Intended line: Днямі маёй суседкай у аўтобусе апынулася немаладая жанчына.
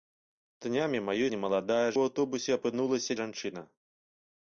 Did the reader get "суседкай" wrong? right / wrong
wrong